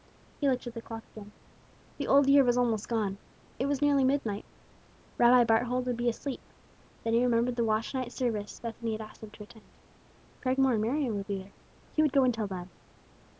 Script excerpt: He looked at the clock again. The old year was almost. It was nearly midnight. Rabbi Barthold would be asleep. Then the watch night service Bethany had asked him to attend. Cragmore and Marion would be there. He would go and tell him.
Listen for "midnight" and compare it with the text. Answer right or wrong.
right